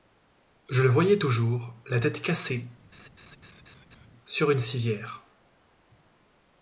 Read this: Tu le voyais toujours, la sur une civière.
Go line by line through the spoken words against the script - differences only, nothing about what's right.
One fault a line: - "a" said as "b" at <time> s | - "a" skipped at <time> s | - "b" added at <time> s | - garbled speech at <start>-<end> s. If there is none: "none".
- "Tu" said as "Je" at 0.7 s
- "tête cassée" added at 2.0 s